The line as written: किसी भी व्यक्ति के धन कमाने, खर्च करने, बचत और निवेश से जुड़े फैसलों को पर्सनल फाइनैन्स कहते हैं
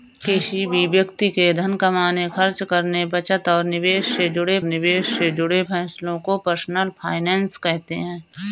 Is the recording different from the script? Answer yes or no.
yes